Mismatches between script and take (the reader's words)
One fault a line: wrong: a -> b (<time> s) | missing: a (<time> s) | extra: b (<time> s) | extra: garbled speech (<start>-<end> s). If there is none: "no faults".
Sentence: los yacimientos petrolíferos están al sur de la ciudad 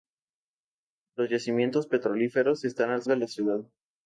missing: sur (3.0 s)